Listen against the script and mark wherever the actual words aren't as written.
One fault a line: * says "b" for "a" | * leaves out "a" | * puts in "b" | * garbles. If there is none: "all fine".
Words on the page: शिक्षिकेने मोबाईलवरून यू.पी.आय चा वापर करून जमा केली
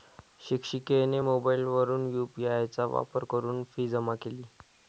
* puts in "फी"